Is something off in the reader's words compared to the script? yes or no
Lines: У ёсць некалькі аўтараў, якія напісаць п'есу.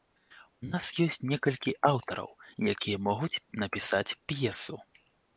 yes